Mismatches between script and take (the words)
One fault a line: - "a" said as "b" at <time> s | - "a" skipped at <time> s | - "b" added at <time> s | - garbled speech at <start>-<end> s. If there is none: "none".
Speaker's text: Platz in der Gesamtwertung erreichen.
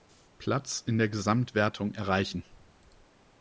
none